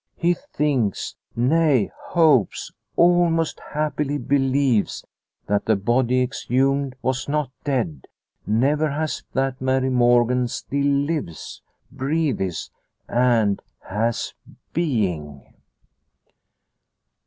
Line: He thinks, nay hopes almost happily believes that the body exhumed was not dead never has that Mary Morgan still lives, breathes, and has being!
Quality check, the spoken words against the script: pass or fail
pass